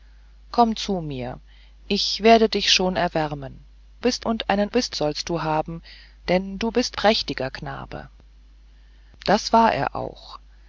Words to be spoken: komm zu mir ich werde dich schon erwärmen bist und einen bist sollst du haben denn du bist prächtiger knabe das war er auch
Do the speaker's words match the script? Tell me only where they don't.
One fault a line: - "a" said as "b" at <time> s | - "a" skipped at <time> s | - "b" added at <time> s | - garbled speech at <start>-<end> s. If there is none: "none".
none